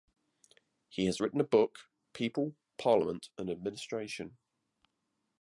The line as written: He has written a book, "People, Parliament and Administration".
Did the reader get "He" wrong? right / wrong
right